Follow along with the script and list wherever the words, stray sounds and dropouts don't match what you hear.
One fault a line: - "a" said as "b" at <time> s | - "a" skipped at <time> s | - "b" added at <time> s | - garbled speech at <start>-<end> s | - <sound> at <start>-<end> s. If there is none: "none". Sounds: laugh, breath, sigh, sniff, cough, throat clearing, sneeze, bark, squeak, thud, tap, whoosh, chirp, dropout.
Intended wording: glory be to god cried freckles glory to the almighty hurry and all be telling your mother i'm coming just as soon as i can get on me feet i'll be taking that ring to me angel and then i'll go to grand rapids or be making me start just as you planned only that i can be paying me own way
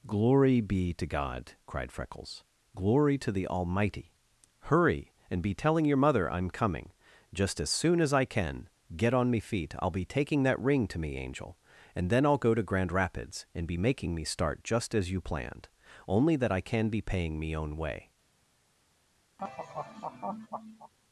- "all" skipped at 5.4 s
- "or" said as "and" at 13.5 s
- laugh at 19.4-20.9 s